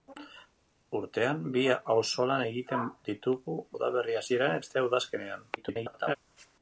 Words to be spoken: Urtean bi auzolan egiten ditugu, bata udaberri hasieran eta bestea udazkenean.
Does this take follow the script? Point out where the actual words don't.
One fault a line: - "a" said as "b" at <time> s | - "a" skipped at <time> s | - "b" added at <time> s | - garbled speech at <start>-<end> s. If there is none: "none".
- "bata" skipped at 3.6 s
- "eta" skipped at 4.6 s
- garbled speech at 5.6-6.2 s